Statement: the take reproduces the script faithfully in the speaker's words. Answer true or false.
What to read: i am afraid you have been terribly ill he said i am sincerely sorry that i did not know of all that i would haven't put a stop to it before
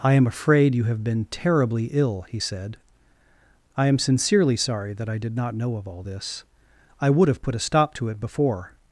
false